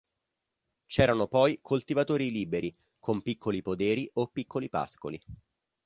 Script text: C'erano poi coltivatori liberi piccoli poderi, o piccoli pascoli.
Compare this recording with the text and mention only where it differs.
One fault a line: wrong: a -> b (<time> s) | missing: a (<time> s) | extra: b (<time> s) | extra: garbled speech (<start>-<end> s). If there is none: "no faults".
extra: con (3.0 s)